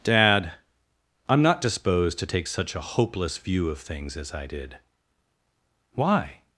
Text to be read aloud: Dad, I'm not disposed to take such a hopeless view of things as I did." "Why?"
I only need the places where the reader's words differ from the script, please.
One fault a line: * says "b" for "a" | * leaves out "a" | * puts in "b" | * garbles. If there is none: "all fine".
all fine